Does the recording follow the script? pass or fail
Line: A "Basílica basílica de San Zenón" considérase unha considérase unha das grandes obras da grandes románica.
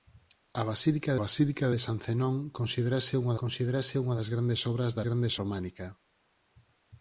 pass